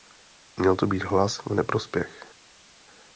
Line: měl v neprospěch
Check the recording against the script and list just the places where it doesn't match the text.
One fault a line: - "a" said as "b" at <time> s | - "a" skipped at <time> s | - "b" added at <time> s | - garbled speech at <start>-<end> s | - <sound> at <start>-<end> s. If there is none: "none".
- "to být hlas" added at 0.7 s